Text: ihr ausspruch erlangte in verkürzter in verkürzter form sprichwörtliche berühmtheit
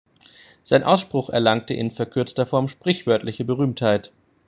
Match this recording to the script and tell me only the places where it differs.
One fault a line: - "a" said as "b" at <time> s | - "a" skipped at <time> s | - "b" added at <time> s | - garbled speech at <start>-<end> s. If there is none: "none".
- "ihr" said as "sein" at 0.6 s
- "in verkürzter" skipped at 2.5 s